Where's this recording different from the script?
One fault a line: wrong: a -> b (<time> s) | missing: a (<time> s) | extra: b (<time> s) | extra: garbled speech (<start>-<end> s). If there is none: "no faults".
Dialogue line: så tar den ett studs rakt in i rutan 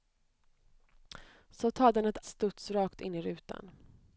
no faults